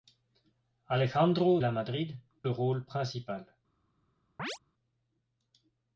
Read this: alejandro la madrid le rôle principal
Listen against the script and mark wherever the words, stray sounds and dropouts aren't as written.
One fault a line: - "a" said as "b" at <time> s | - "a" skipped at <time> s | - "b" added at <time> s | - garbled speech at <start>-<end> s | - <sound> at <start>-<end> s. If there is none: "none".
- chirp at 4.4-4.6 s